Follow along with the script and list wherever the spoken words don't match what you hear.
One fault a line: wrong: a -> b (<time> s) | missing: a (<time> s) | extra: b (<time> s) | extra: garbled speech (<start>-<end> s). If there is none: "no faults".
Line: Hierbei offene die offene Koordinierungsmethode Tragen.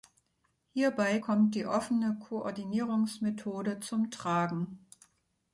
wrong: offene -> kommt (1.1 s)
extra: zum (3.8 s)